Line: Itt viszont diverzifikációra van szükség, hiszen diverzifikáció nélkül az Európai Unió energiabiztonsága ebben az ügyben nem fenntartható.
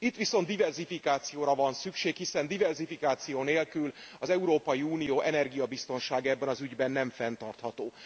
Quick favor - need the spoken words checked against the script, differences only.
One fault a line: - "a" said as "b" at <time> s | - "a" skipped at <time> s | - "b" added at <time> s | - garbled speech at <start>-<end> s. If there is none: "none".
none